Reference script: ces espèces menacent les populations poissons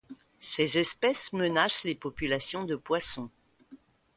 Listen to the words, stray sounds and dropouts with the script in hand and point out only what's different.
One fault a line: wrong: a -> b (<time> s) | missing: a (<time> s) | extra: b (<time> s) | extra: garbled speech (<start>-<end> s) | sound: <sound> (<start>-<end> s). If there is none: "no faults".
extra: de (2.6 s)